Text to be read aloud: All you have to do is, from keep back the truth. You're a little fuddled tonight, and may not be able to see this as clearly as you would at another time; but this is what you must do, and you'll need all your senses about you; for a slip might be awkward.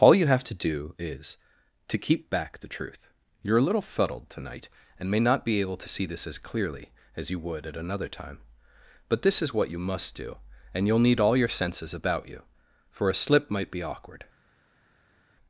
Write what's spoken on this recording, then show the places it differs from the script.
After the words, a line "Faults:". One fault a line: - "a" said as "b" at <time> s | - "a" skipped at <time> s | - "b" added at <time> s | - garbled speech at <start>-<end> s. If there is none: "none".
All you have to do is, to keep back the truth. You're a little fuddled tonight, and may not be able to see this as clearly as you would at another time; but this is what you must do, and you'll need all your senses about you; for a slip might be awkward.
Faults:
- "from" said as "to" at 1.9 s